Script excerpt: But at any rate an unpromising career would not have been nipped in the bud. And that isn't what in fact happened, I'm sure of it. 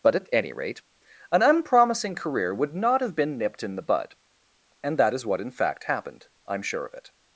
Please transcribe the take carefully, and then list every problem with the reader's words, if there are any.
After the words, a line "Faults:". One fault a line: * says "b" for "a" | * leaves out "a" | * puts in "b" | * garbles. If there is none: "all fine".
But at any rate an unpromising career would not have been nipped in the bud. And that is what in fact happened, I'm sure of it.
Faults:
* says "is" for "isn't"